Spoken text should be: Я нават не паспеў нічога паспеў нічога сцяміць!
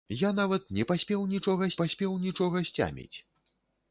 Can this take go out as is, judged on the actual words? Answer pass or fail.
pass